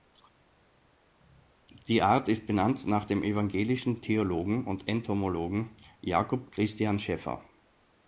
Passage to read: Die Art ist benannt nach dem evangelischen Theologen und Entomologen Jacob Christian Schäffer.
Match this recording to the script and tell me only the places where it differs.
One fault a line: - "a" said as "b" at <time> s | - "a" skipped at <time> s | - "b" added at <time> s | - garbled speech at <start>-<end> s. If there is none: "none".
none